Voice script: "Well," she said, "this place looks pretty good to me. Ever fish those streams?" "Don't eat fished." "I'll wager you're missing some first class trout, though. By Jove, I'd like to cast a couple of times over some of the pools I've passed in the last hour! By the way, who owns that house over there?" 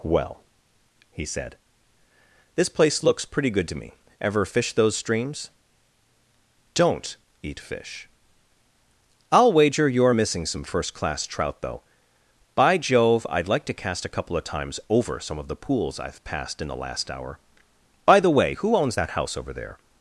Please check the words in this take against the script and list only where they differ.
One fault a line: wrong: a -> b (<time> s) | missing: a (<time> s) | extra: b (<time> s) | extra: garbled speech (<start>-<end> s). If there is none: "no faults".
wrong: she -> he (1.1 s)
wrong: fished -> fish (7.6 s)